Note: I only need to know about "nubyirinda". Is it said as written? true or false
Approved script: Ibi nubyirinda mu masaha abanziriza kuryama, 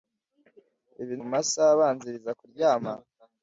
false